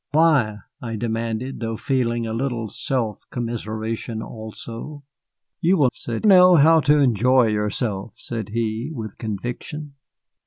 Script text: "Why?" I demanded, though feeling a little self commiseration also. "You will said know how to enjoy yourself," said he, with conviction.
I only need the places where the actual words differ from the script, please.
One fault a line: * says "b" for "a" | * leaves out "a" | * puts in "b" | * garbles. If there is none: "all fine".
all fine